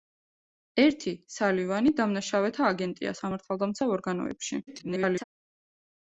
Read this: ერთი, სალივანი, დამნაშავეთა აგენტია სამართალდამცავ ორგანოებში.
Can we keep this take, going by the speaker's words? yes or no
no